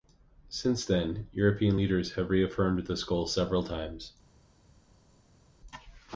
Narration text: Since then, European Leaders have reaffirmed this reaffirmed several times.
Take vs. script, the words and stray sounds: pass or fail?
fail